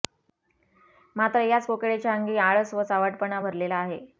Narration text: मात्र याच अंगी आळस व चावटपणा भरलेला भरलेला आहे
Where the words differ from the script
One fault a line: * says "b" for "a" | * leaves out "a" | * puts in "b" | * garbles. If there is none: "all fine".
* puts in "कोकिळेच्या"
* leaves out "भरलेला"